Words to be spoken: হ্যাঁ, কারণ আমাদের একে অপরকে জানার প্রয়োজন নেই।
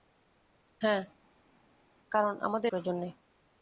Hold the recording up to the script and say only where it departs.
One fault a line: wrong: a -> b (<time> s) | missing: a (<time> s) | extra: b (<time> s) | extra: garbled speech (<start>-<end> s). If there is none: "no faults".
missing: একে অপরকে জানার (2.7 s)